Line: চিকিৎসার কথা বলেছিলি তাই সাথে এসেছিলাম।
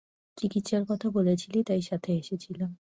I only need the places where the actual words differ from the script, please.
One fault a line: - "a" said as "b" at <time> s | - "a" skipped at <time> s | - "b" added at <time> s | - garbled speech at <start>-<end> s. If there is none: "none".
none